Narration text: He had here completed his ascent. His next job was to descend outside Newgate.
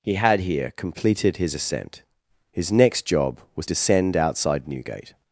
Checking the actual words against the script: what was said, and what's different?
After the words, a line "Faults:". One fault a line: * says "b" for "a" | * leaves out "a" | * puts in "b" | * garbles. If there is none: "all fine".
He had here completed his ascent. His next job was descend outside Newgate.
Faults:
* leaves out "to"